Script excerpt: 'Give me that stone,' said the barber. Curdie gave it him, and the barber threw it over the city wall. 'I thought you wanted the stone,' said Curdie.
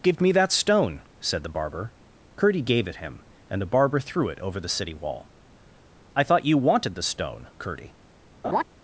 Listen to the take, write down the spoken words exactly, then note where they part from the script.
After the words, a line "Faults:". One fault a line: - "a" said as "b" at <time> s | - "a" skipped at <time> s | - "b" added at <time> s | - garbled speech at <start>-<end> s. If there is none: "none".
'Give me that stone,' said the barber. Curdie gave it him, and the barber threw it over the city wall. 'I thought you wanted the stone,' Curdie.
Faults:
- "said" skipped at 7.5 s